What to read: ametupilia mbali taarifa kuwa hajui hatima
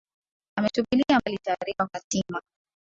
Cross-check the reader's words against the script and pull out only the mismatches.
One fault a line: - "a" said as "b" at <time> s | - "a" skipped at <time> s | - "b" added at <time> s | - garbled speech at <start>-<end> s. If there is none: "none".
- "kuwa hajui" skipped at 1.9 s